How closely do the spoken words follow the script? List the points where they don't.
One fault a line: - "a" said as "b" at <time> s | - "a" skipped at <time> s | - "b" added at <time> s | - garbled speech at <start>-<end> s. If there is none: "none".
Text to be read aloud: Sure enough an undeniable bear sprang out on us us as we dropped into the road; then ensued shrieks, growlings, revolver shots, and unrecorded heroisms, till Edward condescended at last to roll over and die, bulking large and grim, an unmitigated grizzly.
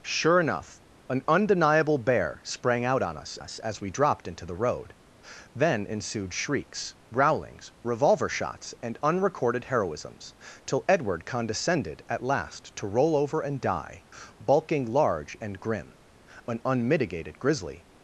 none